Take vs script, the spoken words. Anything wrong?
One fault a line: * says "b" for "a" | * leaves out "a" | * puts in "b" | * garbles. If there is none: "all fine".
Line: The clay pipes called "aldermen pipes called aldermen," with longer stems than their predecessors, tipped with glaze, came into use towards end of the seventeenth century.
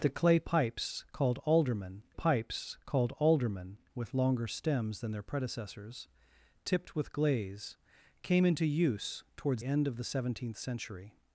all fine